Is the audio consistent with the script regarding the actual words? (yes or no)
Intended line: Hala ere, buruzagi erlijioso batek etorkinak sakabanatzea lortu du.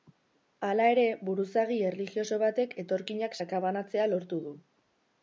yes